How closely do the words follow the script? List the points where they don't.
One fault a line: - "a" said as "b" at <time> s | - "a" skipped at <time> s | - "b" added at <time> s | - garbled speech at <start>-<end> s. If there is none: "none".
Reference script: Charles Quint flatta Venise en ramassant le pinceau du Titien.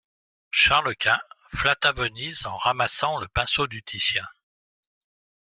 none